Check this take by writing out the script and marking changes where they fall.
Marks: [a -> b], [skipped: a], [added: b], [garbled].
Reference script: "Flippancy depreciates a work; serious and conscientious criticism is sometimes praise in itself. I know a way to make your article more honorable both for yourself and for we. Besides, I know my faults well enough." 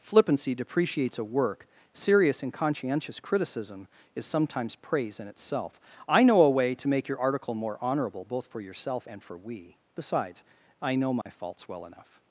"Flippancy depreciates a work; serious and conscientious criticism is sometimes praise in itself. I know a way to make your article more honorable both for yourself and for we. Besides, I know my faults well enough."